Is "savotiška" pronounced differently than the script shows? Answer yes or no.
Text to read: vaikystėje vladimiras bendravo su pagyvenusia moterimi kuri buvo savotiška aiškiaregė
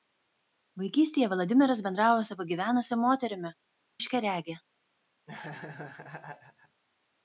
yes